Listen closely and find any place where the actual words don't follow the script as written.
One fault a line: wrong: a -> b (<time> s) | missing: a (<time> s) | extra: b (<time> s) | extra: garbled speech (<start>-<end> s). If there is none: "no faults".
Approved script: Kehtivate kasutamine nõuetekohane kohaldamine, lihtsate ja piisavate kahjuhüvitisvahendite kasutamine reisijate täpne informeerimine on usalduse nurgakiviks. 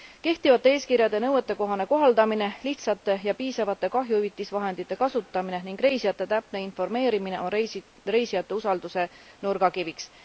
wrong: kasutamine -> eeskirjade (0.8 s)
extra: ning (5.7 s)
extra: reisijate (8.2 s)